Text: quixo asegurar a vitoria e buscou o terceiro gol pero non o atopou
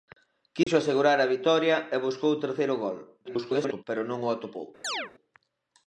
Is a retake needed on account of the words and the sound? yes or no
yes